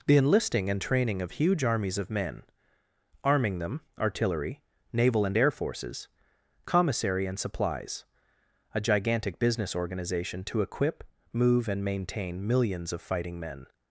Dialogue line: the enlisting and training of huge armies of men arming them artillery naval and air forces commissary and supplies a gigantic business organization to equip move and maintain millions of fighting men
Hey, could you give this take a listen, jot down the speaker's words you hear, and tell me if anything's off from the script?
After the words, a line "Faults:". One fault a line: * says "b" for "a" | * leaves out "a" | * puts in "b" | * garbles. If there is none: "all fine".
the enlisting and training of huge armies of men arming them artillery naval and air forces commissary and supplies a gigantic business organization to equip move and maintain millions of fighting men
Faults:
all fine